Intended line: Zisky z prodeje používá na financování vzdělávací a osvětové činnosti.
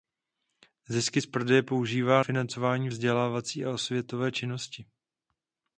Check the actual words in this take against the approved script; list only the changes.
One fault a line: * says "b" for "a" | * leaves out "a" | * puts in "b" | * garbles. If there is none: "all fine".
* leaves out "na"